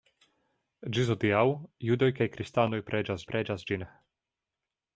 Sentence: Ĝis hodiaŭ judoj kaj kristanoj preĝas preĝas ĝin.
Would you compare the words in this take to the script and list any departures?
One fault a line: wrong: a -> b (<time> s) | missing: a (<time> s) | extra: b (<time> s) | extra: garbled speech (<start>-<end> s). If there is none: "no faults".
no faults